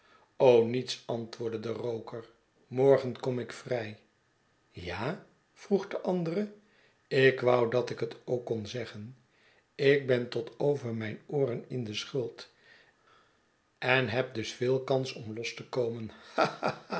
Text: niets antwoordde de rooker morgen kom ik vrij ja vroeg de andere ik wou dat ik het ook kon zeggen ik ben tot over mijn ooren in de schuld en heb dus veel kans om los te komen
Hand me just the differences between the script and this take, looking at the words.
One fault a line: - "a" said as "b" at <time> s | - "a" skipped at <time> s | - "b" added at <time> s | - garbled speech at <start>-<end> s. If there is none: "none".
none